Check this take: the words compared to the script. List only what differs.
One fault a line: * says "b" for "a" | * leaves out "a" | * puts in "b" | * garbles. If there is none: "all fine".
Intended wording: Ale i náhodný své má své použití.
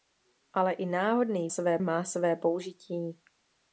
all fine